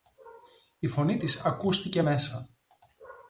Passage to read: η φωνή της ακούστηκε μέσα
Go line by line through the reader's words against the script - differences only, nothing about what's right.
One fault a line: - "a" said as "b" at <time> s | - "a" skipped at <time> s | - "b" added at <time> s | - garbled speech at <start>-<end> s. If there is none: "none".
none